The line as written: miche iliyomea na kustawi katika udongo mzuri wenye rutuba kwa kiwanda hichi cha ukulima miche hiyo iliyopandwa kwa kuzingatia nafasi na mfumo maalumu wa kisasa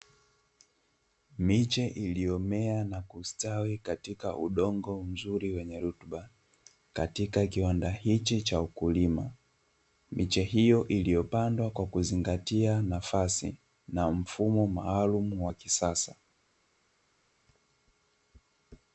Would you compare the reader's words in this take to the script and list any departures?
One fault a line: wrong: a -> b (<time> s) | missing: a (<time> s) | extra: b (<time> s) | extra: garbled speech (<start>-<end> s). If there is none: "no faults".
wrong: kwa -> katika (6.9 s)